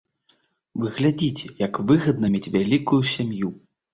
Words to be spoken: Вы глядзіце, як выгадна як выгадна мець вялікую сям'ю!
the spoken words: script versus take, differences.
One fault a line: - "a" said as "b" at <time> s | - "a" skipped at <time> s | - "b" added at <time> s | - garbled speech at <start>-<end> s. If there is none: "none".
- "як выгадна" skipped at 2.3 s